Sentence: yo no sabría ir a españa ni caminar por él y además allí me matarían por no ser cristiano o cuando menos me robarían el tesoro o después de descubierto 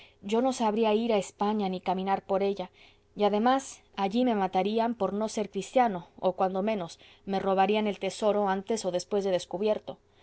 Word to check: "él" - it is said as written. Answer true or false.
false